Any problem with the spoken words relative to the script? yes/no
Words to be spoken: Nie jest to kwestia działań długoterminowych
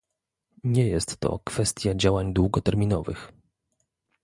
no